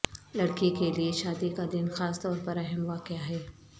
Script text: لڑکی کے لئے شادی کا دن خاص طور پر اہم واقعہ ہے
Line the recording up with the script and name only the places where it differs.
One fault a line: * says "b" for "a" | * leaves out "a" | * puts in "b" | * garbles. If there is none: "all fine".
all fine